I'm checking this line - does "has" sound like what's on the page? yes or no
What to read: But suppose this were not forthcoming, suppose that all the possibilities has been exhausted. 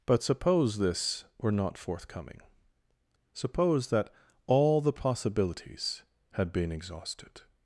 no